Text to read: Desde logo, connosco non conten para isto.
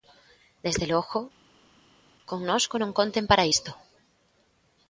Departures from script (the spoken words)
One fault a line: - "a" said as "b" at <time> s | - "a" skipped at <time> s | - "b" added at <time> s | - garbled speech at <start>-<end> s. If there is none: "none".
none